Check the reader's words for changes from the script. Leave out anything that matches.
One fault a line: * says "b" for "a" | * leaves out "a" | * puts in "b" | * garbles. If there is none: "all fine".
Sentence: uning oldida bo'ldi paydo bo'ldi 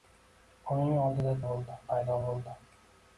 all fine